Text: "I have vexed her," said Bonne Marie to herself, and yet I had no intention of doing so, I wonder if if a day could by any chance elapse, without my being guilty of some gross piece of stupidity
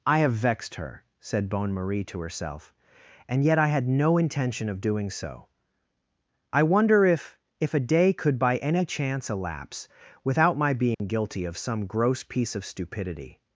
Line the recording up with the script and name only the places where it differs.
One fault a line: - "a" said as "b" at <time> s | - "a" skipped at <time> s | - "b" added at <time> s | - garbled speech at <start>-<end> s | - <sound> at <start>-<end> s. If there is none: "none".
- dropout at 10.9-11.0 s